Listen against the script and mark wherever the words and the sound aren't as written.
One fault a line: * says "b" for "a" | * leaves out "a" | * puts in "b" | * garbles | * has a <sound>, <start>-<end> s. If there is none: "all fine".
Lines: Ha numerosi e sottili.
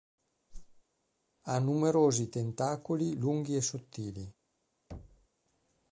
* has a whoosh, 0.5-0.8 s
* puts in "tentacoli lunghi"
* has a thud, 4.9-5.3 s